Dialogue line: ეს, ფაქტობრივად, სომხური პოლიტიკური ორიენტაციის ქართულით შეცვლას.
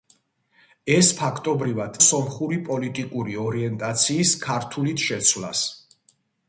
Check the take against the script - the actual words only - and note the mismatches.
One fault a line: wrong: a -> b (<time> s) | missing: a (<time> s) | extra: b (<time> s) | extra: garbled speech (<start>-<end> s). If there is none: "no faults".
no faults